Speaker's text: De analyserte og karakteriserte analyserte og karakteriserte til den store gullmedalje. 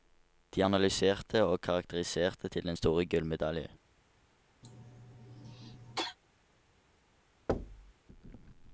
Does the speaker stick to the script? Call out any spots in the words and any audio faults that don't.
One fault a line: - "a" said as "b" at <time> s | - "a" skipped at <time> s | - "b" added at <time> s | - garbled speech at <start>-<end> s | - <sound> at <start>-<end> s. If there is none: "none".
- "analyserte og karakteriserte" skipped at 2.5 s
- cough at 4.6-6.2 s
- thud at 7.5-7.9 s